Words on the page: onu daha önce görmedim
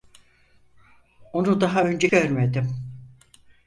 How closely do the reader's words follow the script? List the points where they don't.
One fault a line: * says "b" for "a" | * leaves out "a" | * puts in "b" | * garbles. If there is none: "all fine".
all fine